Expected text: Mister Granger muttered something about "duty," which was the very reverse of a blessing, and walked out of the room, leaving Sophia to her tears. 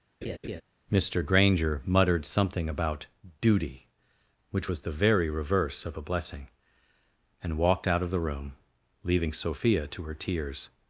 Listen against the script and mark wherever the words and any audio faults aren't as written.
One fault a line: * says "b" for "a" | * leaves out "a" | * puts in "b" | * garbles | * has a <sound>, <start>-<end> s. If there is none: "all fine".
* has a laugh, 0.2-0.6 s